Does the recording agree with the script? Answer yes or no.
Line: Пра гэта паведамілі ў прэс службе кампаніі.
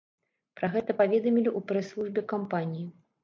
yes